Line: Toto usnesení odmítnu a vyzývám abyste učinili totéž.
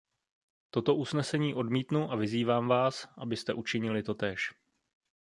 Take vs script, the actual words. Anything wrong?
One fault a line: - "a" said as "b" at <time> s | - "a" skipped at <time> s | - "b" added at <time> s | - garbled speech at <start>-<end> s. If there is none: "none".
- "vás" added at 2.7 s